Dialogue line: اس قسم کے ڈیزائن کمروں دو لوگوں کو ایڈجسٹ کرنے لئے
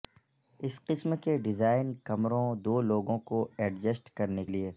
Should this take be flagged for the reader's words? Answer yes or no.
no